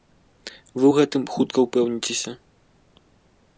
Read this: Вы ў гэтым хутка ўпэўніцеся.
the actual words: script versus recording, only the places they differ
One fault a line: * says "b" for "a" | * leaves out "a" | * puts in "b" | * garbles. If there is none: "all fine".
all fine